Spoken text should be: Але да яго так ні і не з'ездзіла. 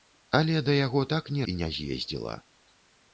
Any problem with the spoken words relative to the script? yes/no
no